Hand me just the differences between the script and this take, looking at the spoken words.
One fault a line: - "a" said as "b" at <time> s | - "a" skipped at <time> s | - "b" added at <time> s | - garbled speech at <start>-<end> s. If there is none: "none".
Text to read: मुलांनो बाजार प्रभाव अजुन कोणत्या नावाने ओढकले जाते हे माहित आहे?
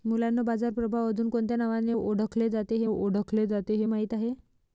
- "ओढकले जाते हे" added at 2.8 s